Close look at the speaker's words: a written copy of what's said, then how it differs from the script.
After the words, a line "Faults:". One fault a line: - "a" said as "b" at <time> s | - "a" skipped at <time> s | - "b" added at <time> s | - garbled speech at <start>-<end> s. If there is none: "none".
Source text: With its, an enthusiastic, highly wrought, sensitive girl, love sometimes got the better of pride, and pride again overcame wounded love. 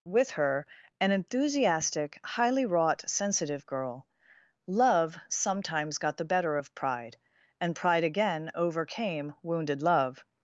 With her, an enthusiastic, highly wrought, sensitive girl, love sometimes got the better of pride, and pride again overcame wounded love.
Faults:
- "its" said as "her" at 0.3 s